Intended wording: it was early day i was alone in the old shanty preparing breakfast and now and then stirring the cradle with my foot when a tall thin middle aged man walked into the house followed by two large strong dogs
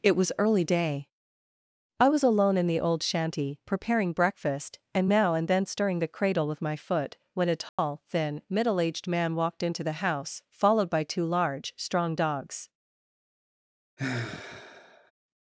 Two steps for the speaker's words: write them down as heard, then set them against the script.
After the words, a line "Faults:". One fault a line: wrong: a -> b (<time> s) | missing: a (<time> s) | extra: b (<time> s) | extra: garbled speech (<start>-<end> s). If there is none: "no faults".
it was early day i was alone in the old shanty preparing breakfast and now and then stirring the cradle with my foot when a tall thin middle aged man walked into the house followed by two large strong dogs
Faults:
no faults